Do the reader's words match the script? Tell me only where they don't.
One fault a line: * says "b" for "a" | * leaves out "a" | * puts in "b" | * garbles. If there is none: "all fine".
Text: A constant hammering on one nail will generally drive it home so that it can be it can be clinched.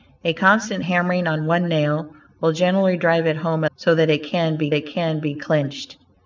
all fine